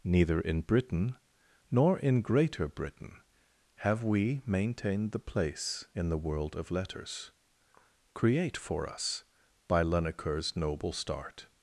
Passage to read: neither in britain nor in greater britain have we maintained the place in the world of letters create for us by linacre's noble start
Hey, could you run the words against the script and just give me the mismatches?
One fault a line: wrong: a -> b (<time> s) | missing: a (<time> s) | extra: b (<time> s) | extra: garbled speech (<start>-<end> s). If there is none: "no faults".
no faults